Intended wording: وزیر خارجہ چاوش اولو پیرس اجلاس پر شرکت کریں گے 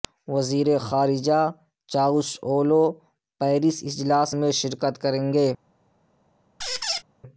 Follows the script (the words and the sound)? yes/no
no